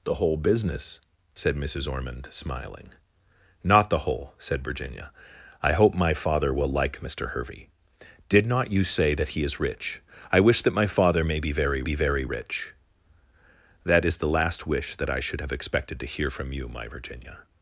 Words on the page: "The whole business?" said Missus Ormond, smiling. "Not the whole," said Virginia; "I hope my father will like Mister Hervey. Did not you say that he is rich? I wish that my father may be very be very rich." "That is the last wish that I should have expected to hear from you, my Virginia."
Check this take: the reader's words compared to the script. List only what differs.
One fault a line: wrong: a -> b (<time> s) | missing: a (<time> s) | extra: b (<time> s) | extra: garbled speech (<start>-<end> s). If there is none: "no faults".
no faults